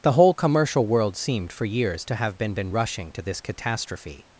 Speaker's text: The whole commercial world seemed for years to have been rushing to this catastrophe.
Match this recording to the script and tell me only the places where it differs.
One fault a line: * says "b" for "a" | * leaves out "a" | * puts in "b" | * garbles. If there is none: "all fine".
* puts in "been"